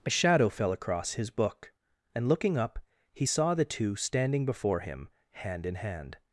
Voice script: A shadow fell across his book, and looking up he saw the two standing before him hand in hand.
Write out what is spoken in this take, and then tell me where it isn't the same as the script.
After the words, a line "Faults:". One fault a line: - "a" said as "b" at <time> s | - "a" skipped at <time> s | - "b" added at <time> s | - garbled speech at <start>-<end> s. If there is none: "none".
A shadow fell across his book, and looking up he saw the two standing before him hand in hand.
Faults:
none